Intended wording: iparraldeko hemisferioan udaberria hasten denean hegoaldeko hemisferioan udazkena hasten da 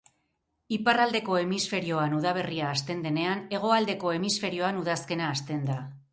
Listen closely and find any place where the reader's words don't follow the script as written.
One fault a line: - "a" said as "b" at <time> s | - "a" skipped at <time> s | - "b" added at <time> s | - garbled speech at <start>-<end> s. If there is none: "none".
none